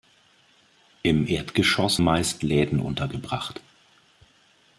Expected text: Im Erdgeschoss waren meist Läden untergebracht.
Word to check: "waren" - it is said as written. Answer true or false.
false